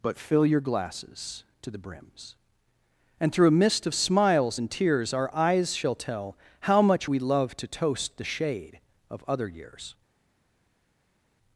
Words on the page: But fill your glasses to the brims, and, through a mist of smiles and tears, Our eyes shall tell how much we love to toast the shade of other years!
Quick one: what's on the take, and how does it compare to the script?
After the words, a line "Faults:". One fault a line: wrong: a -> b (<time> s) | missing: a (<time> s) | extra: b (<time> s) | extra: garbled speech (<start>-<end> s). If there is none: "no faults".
But fill your glasses to the brims, and, through a mist of smiles and tears, Our eyes shall tell how much we love to toast the shade of other years!
Faults:
no faults